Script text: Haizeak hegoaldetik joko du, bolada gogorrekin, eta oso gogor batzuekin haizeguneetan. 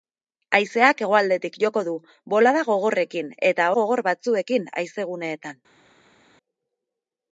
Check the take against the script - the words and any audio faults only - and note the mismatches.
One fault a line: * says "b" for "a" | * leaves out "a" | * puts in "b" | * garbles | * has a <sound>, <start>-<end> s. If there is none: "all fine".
* leaves out "oso"